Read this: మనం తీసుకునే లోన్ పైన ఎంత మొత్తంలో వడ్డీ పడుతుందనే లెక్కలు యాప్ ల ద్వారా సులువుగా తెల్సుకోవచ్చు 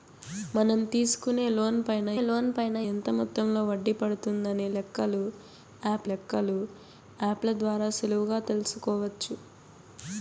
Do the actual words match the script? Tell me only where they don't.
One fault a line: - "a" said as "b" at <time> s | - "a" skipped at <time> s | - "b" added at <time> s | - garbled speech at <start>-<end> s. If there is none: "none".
- "లోన్ పైన" added at 2.2 s
- "లెక్కలు యాప్" added at 6.0 s